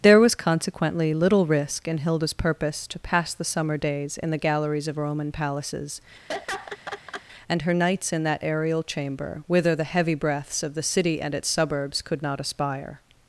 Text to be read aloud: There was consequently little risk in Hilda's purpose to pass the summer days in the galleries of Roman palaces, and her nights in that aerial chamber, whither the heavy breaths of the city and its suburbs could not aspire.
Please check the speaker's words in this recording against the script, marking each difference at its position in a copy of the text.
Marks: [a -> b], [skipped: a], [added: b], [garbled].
There was consequently little risk in Hilda's purpose to pass the summer days in the galleries of Roman palaces, and her nights in that aerial chamber, whither the heavy breaths of the city and its suburbs could not aspire.